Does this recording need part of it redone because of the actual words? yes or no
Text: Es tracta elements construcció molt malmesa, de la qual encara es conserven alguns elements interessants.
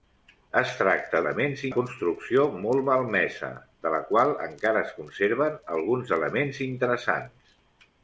no